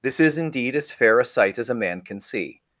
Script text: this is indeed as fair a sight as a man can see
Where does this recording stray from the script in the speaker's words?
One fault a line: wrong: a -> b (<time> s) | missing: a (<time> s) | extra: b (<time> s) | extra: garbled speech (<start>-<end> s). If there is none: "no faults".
no faults